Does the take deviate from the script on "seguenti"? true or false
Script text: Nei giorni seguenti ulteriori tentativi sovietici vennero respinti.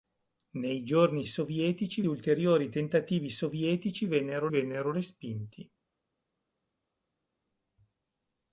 true